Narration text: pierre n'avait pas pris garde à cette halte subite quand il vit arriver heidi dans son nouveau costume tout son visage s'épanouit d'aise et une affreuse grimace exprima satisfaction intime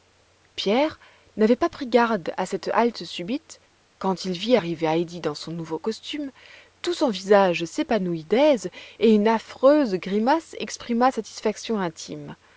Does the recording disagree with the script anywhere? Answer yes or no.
no